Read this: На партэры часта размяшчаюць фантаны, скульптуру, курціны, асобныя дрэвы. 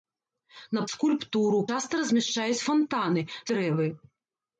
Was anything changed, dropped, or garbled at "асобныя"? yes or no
yes